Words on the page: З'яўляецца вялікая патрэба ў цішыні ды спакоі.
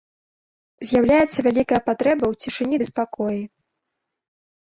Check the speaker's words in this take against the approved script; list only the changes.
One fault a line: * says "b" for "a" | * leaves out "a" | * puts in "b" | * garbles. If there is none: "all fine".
all fine